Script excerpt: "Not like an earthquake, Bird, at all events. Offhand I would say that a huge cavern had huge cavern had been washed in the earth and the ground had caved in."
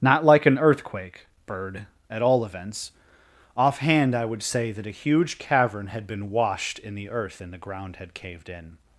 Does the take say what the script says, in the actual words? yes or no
no